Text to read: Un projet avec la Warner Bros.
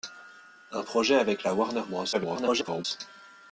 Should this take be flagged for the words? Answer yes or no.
yes